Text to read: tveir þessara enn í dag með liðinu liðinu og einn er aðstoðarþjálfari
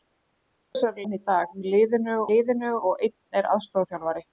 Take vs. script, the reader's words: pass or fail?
pass